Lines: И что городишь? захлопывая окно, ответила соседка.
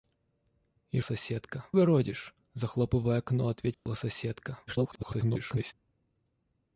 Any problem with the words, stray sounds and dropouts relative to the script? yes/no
yes